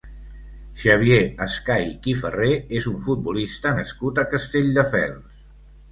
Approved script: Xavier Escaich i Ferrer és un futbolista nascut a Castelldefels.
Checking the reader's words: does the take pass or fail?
pass